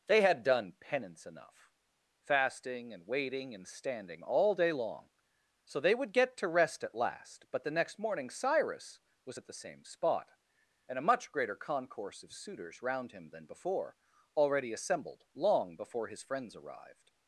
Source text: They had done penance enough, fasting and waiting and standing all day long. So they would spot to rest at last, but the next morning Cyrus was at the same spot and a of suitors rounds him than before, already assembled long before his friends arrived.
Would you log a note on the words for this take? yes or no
yes